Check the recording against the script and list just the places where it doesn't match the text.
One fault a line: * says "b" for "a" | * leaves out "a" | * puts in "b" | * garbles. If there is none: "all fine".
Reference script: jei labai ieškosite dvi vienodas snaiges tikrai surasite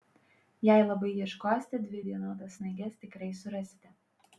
all fine